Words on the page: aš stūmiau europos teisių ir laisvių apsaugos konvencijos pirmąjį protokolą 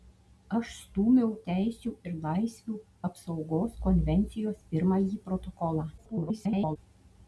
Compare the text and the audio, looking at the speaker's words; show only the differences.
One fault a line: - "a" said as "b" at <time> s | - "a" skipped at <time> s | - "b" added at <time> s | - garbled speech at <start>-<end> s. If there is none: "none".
- "europos" skipped at 1.3 s
- garbled speech at 6.0-6.8 s